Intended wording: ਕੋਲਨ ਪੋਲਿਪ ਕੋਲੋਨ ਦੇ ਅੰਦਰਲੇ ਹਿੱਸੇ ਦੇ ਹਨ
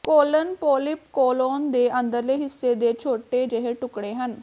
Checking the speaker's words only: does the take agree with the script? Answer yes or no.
no